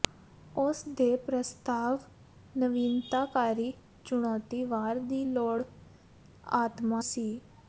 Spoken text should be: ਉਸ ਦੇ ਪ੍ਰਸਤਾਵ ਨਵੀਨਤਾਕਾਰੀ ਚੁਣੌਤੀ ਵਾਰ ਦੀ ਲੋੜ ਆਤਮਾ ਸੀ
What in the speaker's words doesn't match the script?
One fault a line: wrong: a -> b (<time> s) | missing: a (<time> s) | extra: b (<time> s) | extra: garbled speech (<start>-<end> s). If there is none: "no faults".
no faults